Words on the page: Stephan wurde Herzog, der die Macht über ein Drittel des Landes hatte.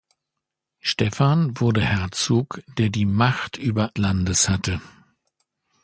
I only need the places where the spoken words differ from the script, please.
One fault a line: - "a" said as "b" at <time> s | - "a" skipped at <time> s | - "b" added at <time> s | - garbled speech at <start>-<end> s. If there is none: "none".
- "ein Drittel des" skipped at 3.9 s